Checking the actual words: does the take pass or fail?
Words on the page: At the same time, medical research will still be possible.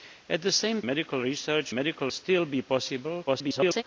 fail